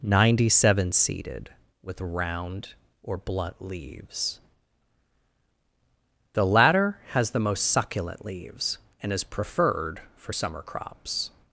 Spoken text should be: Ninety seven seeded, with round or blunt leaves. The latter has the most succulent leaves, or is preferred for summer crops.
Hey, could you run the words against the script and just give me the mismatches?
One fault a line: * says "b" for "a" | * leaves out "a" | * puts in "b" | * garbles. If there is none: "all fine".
* says "and" for "or"